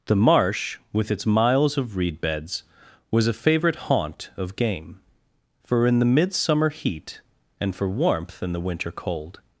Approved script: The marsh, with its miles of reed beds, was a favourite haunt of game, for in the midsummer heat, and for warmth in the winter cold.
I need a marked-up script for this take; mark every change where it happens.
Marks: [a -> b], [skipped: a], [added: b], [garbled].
The marsh, with its miles of reed beds, was a favourite haunt of game, for in the midsummer heat, and for warmth in the winter cold.